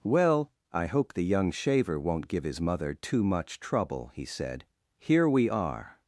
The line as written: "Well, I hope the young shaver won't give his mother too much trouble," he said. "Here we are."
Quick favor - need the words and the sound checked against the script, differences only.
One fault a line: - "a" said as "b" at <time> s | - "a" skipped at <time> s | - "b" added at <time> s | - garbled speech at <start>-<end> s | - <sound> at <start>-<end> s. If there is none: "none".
none